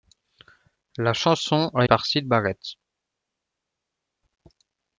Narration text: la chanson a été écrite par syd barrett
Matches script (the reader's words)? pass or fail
fail